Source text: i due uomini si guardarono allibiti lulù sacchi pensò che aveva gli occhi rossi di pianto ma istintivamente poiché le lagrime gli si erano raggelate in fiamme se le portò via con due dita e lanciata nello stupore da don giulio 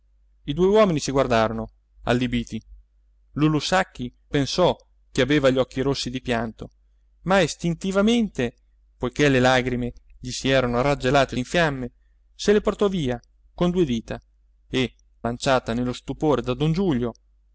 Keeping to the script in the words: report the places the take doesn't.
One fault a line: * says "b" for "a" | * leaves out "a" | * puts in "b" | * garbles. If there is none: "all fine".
all fine